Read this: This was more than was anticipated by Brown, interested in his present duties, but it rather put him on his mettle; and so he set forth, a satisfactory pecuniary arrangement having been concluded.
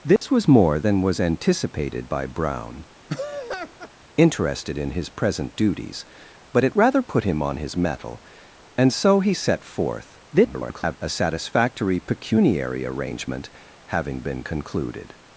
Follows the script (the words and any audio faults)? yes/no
no